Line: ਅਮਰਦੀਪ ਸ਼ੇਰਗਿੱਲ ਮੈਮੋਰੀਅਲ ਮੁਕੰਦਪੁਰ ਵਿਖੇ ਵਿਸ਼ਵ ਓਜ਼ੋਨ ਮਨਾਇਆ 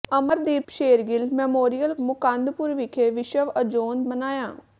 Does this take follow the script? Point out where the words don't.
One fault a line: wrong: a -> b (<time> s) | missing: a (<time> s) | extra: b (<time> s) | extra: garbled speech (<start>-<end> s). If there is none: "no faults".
no faults